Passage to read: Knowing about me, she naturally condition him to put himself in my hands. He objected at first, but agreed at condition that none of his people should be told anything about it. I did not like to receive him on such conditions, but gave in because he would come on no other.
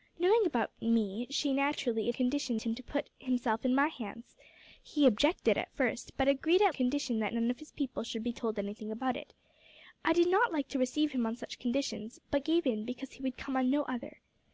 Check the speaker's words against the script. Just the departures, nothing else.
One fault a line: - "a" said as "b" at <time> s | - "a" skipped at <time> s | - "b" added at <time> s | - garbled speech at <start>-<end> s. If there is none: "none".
none